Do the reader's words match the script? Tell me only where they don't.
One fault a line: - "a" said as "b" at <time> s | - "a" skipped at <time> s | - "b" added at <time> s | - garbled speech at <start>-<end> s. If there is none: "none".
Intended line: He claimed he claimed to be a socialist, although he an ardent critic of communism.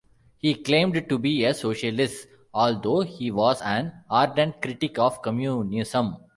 - "he claimed" skipped at 1.1 s
- "was" added at 3.3 s